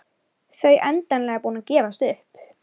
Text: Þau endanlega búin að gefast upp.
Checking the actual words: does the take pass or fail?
pass